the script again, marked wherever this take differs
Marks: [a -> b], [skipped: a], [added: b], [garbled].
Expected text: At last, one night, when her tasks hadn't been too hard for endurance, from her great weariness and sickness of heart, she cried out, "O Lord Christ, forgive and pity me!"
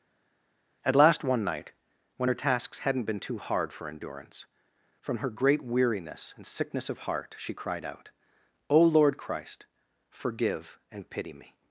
At last, one night, when her tasks hadn't been too hard for endurance, from her great weariness and sickness of heart, she cried out, "O Lord Christ, forgive and pity me!"